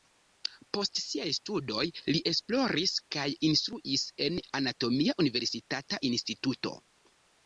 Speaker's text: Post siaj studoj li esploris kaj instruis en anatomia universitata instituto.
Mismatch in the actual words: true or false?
false